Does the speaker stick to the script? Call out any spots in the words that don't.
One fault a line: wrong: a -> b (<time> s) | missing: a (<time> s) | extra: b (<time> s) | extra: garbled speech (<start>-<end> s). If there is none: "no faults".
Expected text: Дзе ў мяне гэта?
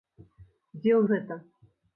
missing: мяне (1.0 s)